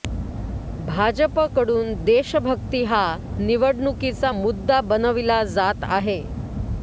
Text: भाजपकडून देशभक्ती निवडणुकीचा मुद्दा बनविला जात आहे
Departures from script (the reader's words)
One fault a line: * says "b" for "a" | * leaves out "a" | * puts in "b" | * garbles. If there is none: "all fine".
* puts in "हा"